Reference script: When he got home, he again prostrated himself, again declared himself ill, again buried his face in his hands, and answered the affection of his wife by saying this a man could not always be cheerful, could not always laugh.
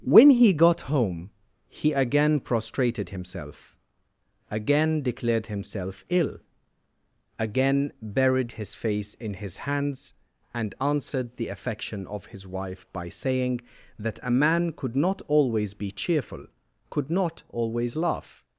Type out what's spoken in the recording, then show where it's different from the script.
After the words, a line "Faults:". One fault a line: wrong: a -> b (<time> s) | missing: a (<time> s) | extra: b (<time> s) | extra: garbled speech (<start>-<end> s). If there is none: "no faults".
When he got home, he again prostrated himself, again declared himself ill, again buried his face in his hands, and answered the affection of his wife by saying that a man could not always be cheerful, could not always laugh.
Faults:
wrong: this -> that (14.0 s)